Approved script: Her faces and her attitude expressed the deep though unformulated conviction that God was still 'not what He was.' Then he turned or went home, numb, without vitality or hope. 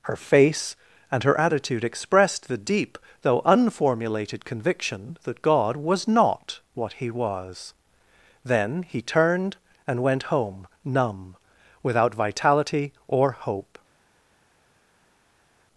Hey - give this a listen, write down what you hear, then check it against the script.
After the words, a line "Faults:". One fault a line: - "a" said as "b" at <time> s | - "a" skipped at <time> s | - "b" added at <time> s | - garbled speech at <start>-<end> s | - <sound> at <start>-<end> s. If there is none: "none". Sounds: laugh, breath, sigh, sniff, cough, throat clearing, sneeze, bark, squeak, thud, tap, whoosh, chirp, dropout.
Her face and her attitude expressed the deep though unformulated conviction that God was 'not what He was.' Then he turned and went home, numb, without vitality or hope.
Faults:
- "faces" said as "face" at 0.2 s
- "still" skipped at 6.1 s
- "or" said as "and" at 9.9 s